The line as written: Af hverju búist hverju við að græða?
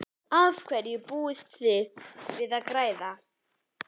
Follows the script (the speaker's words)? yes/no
no